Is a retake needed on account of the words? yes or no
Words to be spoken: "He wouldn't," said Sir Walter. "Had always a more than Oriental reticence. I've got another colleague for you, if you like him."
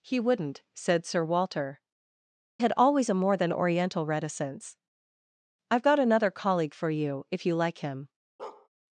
no